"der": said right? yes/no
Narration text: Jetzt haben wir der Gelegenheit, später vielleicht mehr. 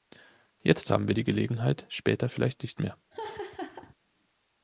no